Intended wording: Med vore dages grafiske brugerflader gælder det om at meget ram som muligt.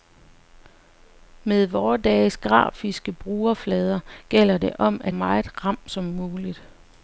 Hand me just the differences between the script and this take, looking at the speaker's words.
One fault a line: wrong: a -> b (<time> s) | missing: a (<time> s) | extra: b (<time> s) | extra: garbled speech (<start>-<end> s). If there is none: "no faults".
no faults